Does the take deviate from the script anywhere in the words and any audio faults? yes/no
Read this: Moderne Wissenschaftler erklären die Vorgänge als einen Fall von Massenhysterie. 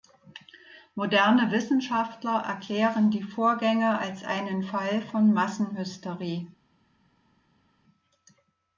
no